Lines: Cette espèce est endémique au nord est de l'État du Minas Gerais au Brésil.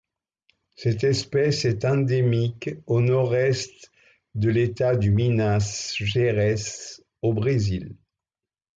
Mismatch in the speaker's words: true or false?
false